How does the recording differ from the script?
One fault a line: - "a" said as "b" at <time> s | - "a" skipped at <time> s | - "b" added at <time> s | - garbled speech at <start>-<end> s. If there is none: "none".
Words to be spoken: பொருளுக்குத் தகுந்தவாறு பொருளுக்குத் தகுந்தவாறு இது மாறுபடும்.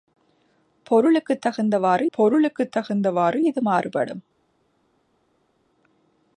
none